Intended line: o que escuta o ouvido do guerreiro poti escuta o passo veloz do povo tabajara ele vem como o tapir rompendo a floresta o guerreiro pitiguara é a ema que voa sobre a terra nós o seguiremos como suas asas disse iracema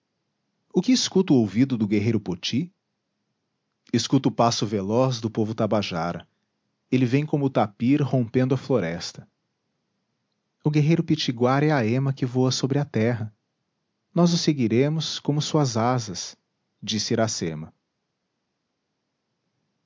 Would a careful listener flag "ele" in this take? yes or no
no